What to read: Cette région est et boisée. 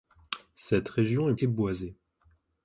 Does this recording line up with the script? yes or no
yes